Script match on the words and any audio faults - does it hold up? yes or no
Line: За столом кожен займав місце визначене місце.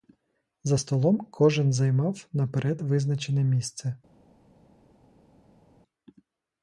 no